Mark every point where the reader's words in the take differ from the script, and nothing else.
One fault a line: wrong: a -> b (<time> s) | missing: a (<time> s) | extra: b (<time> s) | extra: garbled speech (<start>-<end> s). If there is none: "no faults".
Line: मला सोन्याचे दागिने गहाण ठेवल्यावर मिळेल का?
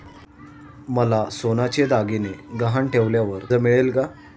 no faults